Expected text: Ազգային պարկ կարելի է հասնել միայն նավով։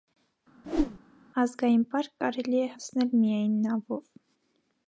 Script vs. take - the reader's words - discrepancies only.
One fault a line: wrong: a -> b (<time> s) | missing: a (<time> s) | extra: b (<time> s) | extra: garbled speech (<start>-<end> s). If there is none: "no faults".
no faults